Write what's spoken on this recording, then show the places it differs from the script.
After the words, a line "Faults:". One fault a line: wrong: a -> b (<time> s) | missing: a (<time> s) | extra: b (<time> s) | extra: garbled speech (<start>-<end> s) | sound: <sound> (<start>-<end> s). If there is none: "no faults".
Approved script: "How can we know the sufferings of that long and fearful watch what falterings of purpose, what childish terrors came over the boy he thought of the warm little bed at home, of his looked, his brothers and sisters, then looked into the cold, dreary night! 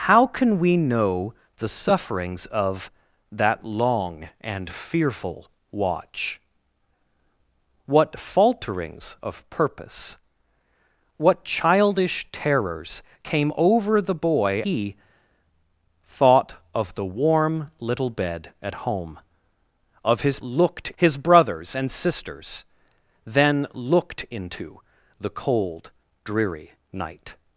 "How can we know the sufferings of that long and fearful watch what falterings of purpose, what childish terrors came over the boy he thought of the warm little bed at home, of his looked, his brothers and sisters, then looked into the cold, dreary night!
Faults:
no faults